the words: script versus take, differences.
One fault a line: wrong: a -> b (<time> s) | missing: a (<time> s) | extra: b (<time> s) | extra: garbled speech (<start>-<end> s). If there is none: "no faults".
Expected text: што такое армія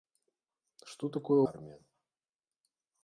no faults